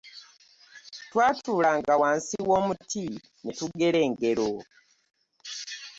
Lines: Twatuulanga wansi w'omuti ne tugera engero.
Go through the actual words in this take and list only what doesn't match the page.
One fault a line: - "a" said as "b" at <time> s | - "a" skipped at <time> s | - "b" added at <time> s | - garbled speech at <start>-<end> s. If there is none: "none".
none